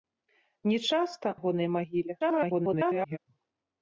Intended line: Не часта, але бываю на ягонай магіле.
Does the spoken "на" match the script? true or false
false